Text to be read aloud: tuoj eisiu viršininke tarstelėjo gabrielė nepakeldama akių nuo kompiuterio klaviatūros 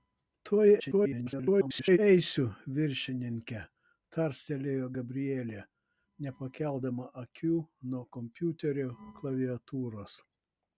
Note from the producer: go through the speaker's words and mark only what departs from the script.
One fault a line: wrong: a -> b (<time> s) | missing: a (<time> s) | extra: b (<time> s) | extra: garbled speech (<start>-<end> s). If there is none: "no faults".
extra: garbled speech (0.8-2.0 s)